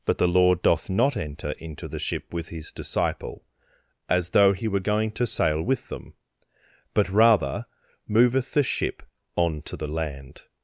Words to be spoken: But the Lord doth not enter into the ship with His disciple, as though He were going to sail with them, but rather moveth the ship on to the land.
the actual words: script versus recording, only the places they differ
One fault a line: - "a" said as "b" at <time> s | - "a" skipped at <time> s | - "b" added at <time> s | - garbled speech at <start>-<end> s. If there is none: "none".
none